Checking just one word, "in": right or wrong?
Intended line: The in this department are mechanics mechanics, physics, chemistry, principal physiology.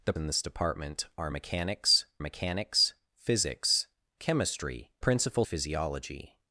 right